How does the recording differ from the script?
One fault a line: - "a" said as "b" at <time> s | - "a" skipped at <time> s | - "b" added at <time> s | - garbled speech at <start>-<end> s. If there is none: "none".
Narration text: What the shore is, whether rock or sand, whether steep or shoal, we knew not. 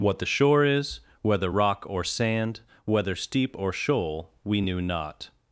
none